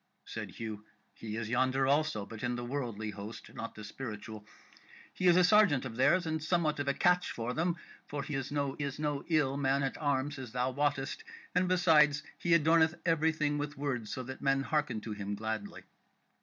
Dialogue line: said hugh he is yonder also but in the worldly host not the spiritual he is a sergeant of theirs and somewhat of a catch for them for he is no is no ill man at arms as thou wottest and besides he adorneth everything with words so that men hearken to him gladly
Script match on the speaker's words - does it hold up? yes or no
yes